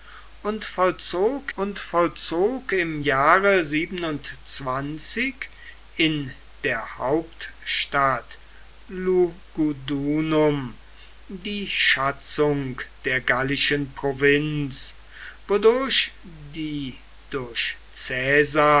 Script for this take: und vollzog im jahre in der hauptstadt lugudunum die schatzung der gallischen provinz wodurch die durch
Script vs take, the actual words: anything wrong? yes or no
yes